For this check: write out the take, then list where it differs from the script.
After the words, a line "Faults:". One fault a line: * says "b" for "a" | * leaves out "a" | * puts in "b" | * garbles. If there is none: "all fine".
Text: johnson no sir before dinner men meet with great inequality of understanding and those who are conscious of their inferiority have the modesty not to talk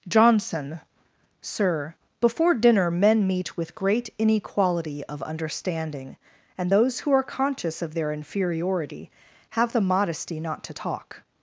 johnson sir before dinner men meet with great inequality of understanding and those who are conscious of their inferiority have the modesty not to talk
Faults:
* leaves out "no"